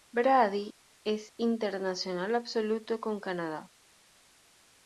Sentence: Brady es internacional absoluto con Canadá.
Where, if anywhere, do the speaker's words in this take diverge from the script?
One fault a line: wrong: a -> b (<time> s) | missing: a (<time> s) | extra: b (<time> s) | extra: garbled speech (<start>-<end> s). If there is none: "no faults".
no faults